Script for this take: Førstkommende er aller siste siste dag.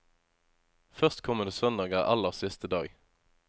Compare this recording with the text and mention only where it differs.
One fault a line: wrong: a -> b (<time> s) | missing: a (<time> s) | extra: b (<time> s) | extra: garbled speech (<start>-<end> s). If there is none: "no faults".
extra: søndag (1.5 s)
missing: siste (2.7 s)